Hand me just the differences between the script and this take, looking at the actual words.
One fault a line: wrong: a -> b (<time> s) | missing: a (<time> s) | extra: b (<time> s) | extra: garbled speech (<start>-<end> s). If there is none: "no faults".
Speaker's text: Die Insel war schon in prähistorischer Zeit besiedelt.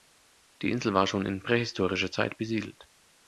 no faults